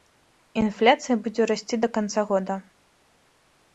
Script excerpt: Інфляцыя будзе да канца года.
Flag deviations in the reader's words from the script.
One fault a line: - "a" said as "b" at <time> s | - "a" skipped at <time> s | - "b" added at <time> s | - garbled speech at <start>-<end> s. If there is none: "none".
- "расці" added at 1.5 s